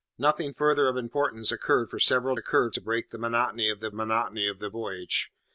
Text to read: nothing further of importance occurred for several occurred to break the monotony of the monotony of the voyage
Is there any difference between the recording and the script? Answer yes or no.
no